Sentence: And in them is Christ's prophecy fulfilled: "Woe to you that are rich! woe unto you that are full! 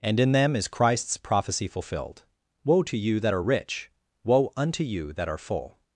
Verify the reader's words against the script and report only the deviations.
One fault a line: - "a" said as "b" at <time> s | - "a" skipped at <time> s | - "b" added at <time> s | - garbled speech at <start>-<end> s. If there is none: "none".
none